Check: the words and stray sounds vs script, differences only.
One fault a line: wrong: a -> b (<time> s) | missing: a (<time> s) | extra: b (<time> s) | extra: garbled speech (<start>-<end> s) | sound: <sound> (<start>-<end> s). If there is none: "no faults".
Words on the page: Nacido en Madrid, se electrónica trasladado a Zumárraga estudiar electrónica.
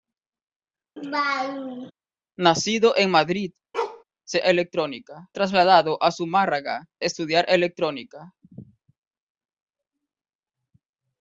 sound: laugh (1.0-1.9 s)
sound: bark (3.7-4.0 s)